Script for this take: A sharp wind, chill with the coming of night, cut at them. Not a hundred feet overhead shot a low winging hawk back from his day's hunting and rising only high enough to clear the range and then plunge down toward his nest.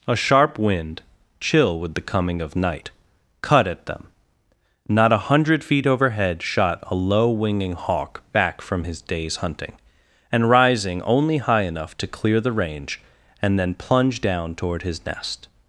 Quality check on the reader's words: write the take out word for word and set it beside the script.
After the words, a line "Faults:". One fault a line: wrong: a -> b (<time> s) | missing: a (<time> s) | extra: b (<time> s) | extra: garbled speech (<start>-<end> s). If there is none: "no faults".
A sharp wind, chill with the coming of night, cut at them. Not a hundred feet overhead shot a low winging hawk back from his day's hunting and rising only high enough to clear the range and then plunge down toward his nest.
Faults:
no faults